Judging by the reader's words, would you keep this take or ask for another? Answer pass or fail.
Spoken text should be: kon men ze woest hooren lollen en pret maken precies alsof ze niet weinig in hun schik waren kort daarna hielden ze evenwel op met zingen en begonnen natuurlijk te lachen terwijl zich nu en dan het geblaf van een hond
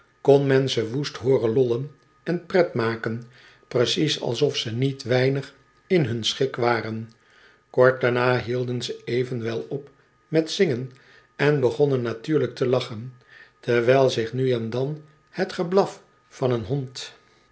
pass